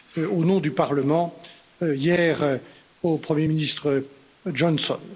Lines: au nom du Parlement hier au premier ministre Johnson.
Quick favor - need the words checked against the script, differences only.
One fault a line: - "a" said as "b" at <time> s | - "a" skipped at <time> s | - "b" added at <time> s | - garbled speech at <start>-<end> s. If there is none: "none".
none